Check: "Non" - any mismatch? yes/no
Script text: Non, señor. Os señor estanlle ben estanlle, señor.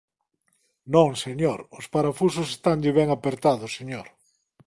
no